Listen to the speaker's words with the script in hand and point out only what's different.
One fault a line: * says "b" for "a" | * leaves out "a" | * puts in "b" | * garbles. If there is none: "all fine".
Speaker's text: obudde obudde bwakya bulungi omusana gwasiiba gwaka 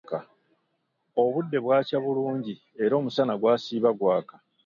* leaves out "obudde"
* puts in "era"